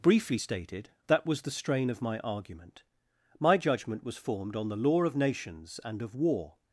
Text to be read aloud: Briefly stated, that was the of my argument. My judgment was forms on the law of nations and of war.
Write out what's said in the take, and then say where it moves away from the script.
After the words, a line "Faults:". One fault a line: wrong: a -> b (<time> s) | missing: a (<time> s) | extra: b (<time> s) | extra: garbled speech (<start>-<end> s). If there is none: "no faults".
Briefly stated, that was the strain of my argument. My judgment was formed on the law of nations and of war.
Faults:
extra: strain (1.5 s)
wrong: forms -> formed (4.2 s)